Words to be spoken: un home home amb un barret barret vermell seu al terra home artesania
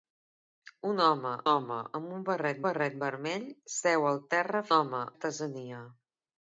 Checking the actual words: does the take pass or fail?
pass